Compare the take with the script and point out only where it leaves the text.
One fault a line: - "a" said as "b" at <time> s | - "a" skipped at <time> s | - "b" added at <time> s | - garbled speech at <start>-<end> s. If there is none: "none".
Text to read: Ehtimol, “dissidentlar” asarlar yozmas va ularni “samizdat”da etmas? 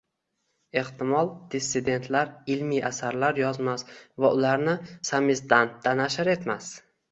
- "ilmiy" added at 2.5 s
- "nashr" added at 6.0 s